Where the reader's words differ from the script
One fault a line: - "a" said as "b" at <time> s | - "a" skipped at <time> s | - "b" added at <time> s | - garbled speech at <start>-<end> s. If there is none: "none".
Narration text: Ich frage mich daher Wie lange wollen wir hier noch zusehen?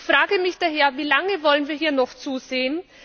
none